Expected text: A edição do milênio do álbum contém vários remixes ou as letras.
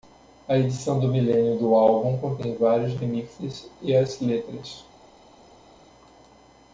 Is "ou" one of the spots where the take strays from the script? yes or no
yes